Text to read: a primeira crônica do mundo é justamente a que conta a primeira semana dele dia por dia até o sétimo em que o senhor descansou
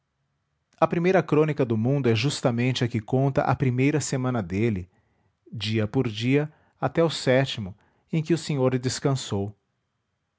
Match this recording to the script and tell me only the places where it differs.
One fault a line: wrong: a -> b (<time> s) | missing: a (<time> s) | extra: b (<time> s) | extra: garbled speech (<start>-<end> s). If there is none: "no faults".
no faults